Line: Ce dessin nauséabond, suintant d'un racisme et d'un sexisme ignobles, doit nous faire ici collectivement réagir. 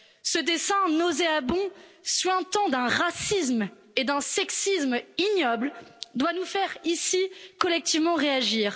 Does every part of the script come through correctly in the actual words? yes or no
yes